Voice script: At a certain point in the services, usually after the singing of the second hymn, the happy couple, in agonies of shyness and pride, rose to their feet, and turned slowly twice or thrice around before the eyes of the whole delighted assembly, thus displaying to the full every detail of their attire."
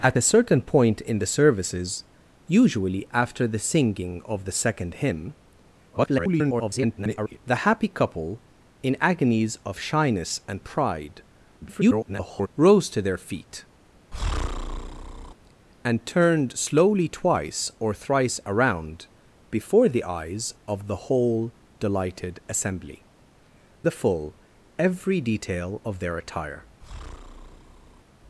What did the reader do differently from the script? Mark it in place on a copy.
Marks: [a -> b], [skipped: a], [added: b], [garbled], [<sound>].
At a certain point in the services, usually after the singing of the second hymn, [garbled] the happy couple, in agonies of shyness and pride, [garbled] rose to their feet, [breath] and turned slowly twice or thrice around before the eyes of the whole delighted assembly, [skipped: thus displaying to] the full every detail of their attire." [breath]